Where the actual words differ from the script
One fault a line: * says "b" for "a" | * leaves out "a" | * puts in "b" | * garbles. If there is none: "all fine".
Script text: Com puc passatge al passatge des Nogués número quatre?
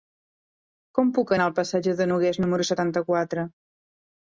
* says "anar" for "passatge"
* says "de" for "des"
* puts in "setanta"